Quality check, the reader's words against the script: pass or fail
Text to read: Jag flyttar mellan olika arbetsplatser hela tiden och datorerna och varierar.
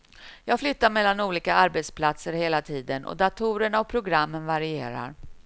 fail